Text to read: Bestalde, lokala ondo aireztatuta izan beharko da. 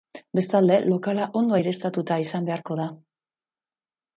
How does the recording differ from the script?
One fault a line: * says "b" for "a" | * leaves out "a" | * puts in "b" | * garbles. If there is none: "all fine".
all fine